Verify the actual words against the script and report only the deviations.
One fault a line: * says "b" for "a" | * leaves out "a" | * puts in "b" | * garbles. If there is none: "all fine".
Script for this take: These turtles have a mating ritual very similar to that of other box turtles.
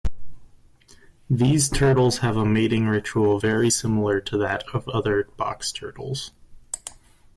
all fine